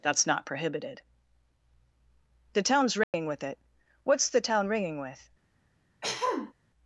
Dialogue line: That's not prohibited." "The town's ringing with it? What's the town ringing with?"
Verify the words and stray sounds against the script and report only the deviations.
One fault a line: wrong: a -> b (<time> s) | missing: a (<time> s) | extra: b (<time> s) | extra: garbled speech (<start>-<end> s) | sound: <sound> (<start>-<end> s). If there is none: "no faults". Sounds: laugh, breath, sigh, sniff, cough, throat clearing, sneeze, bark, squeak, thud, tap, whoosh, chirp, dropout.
sound: dropout (3.0-3.1 s)
sound: throat clearing (6.0-6.5 s)